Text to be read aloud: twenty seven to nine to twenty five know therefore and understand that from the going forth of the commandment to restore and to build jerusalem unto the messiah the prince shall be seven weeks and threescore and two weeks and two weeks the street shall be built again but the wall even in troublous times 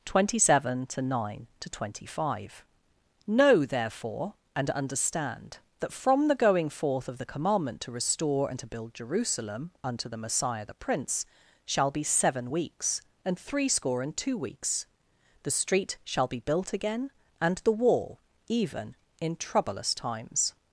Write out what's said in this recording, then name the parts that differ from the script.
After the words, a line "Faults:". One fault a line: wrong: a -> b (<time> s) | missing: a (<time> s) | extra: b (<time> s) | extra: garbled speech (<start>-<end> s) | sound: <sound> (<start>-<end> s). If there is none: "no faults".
twenty seven to nine to twenty five know therefore and understand that from the going forth of the commandment to restore and to build jerusalem unto the messiah the prince shall be seven weeks and threescore and two weeks the street shall be built again and the wall even in troublous times
Faults:
missing: and two weeks (14.9 s)
wrong: but -> and (17.4 s)